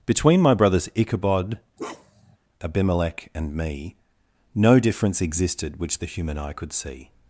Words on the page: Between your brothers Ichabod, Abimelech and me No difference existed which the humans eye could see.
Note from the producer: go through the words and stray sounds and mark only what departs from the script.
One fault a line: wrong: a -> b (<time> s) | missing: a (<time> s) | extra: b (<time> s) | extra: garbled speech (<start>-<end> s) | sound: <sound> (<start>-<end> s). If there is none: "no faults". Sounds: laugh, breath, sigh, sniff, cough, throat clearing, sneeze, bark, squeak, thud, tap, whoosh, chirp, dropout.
wrong: your -> my (0.4 s)
sound: bark (1.8-2.4 s)
wrong: humans -> human (6.0 s)